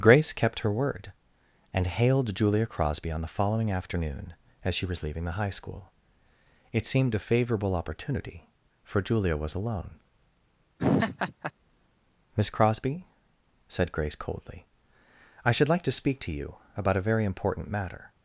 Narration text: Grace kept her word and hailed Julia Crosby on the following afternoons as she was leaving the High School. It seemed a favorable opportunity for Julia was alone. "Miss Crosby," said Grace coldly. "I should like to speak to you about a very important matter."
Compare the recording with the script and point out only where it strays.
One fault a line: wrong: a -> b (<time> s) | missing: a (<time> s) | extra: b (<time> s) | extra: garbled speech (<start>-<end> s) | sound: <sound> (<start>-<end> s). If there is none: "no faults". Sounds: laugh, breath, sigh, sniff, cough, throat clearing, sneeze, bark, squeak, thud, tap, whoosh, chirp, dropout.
wrong: afternoons -> afternoon (3.7 s)
sound: laugh (10.8-11.5 s)